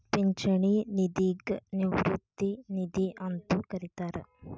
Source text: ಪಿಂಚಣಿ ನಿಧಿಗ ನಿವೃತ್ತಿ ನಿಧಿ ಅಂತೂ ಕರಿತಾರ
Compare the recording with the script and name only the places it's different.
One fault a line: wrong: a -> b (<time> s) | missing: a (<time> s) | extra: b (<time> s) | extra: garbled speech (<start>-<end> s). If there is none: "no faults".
no faults